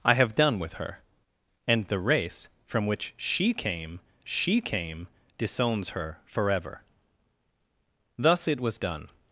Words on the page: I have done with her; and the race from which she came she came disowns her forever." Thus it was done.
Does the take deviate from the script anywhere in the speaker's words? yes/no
no